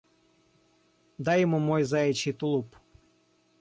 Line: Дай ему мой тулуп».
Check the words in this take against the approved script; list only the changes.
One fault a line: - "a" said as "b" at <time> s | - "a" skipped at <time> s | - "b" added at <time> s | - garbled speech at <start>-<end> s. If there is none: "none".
- "заячий" added at 1.8 s